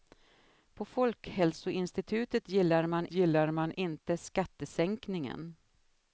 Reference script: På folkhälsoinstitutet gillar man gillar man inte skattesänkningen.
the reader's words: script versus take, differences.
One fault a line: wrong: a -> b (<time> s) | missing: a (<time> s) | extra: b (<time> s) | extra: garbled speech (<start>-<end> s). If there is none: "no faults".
no faults